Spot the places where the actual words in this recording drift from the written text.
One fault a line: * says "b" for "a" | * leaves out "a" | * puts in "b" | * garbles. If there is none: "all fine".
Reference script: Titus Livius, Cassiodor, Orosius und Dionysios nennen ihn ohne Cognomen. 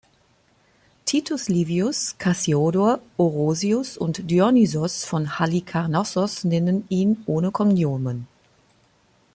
* puts in "von Halikarnassos"